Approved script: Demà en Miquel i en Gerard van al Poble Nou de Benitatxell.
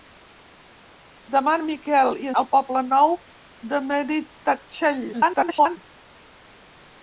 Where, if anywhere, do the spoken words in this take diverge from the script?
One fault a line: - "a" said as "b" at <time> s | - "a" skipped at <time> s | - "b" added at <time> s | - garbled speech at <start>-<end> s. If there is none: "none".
- "en Gerard van" skipped at 2.3 s
- garbled speech at 5.1-5.8 s